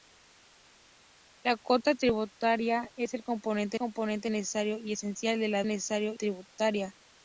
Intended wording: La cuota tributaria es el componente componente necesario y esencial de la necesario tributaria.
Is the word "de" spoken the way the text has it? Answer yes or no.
yes